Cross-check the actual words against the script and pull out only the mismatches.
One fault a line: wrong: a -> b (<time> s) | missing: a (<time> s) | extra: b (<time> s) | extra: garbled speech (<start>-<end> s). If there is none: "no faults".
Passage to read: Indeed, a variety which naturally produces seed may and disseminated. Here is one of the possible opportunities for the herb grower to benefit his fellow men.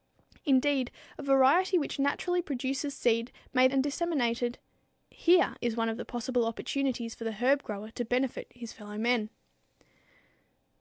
no faults